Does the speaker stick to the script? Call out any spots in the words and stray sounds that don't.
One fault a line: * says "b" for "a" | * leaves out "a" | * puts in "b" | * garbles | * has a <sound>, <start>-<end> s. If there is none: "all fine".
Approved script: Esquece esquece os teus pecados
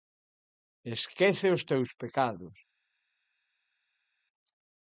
* leaves out "esquece"